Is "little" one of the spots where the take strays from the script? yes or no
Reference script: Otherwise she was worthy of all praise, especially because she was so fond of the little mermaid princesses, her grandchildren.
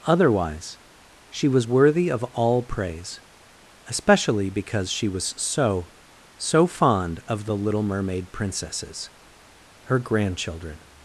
no